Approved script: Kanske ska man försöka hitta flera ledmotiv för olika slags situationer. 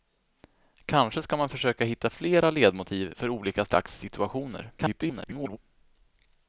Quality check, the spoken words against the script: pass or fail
fail